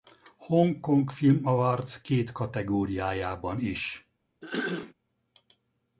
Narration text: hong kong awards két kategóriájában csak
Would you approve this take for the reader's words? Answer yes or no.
no